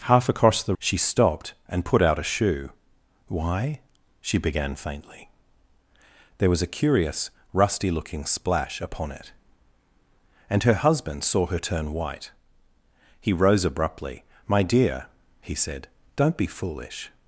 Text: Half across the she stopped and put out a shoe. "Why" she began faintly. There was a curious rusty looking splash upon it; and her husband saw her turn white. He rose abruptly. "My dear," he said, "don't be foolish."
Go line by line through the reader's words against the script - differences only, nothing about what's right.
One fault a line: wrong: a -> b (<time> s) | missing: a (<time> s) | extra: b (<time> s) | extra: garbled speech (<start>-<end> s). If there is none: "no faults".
no faults